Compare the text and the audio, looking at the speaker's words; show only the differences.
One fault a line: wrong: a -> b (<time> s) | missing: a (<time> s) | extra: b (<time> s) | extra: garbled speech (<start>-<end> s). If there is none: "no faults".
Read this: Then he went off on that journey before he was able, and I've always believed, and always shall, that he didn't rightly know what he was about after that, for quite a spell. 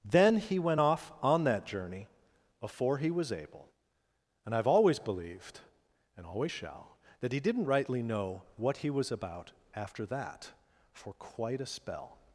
no faults